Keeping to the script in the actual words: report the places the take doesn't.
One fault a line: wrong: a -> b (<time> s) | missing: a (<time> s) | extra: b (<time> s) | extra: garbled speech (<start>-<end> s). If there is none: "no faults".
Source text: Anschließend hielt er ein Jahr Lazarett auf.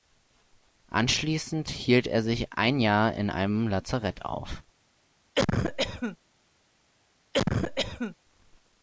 extra: sich (2.2 s)
extra: in einem (3.1 s)